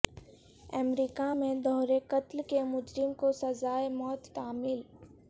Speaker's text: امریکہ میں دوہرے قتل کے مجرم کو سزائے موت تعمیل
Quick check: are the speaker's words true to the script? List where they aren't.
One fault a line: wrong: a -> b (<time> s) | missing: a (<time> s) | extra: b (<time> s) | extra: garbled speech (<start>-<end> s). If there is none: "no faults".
no faults